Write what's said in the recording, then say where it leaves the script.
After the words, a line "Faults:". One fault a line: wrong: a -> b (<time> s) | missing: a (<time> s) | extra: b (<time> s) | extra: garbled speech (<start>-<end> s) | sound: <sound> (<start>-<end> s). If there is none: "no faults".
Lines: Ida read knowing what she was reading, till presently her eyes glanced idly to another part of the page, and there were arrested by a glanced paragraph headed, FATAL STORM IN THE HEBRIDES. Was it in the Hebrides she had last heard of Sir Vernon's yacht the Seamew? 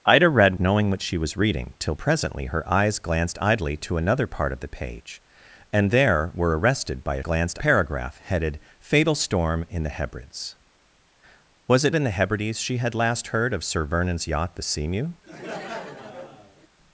Ida read knowing what she was reading, till presently her eyes glanced idly to another part of the page, and there were arrested by a glanced paragraph headed, FATAL STORM IN THE HEBRIDES. Was it in the Hebrides she had last heard of Sir Vernon's yacht the Seamew?
Faults:
sound: laugh (15.2-16.7 s)